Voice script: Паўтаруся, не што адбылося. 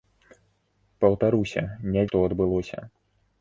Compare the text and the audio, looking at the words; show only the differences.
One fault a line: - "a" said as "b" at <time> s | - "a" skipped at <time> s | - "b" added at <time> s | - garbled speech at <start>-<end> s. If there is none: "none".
none